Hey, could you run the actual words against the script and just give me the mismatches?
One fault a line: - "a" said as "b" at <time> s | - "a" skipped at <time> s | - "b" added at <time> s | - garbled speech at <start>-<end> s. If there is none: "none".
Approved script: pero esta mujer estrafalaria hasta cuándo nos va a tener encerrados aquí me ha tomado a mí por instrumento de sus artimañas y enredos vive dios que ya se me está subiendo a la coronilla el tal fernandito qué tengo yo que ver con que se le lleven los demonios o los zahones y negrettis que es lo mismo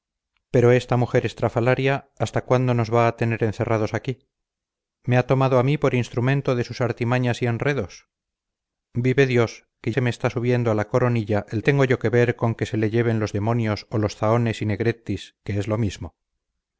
- "ya" skipped at 9.9 s
- "tal fernandito qué" skipped at 11.6 s